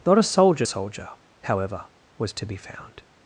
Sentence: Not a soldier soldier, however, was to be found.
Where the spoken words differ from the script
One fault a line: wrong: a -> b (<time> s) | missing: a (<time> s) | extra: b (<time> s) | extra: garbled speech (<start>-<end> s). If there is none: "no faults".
no faults